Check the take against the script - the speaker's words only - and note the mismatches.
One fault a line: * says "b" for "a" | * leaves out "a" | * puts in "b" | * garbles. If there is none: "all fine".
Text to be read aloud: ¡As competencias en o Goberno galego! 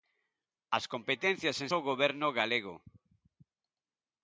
all fine